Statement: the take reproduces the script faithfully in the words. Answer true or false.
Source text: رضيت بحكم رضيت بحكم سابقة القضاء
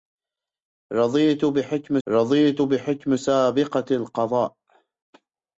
true